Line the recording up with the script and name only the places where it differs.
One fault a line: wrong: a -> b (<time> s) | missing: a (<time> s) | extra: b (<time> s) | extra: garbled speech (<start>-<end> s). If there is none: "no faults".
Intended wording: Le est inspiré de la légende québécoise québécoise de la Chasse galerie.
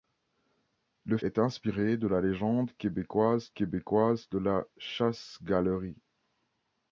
no faults